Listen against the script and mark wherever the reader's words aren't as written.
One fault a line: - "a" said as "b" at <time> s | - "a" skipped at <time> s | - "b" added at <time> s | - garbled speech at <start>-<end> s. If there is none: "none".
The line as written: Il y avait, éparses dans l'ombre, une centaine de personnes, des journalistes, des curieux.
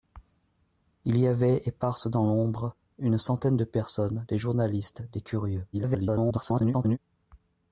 - garbled speech at 5.7-7.0 s